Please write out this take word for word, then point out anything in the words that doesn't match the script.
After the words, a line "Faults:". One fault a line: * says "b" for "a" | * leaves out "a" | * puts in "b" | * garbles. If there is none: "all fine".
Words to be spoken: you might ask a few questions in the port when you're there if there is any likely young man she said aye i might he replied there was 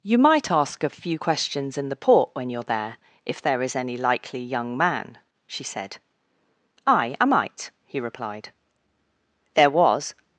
you might ask a few questions in the port when you're there if there is any likely young man she said aye i might he replied there was
Faults:
all fine